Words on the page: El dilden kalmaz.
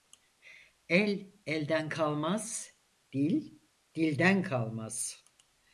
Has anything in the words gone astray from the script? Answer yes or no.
yes